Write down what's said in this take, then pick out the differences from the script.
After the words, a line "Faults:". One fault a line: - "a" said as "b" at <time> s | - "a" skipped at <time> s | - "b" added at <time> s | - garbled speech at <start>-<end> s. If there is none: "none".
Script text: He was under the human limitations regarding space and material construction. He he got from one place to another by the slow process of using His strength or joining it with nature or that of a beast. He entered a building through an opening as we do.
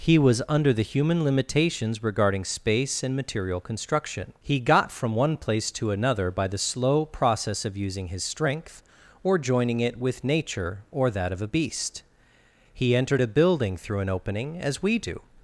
He was under the human limitations regarding space and material construction. He got from one place to another by the slow process of using His strength or joining it with nature or that of a beast. He entered a building through an opening as we do.
Faults:
- "he" skipped at 4.6 s